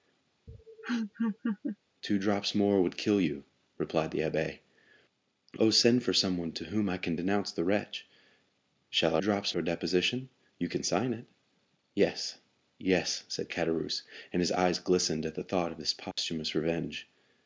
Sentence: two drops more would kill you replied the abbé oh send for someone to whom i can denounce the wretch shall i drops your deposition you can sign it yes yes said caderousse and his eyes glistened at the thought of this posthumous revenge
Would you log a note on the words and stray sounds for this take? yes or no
yes